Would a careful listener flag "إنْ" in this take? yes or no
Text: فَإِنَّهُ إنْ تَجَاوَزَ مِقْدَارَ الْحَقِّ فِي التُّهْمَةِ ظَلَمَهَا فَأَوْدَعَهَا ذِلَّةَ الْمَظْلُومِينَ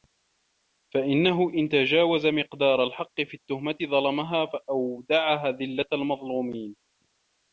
no